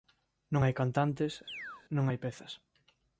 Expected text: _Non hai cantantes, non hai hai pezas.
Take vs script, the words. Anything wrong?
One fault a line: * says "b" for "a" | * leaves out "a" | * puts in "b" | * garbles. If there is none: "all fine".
* leaves out "hai"